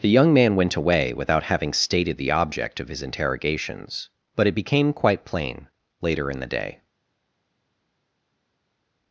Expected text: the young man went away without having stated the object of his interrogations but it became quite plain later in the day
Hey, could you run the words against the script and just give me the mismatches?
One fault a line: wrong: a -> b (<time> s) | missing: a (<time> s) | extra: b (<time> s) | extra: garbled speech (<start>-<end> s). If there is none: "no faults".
no faults